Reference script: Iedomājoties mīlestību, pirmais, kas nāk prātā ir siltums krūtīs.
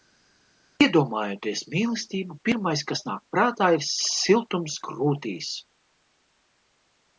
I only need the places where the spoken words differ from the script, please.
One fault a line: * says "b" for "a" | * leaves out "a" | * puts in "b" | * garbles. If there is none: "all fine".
all fine